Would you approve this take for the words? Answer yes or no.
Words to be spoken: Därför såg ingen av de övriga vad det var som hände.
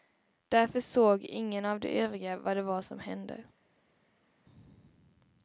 yes